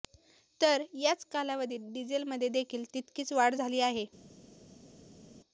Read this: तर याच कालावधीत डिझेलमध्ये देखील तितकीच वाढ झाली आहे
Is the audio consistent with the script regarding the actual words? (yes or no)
yes